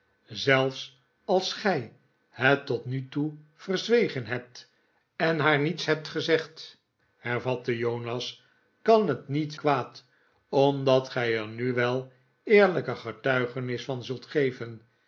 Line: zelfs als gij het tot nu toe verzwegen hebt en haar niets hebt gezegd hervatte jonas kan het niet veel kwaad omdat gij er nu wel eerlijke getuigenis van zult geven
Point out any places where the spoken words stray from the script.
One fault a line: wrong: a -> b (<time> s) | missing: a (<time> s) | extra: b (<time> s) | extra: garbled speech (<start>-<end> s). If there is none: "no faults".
missing: veel (9.6 s)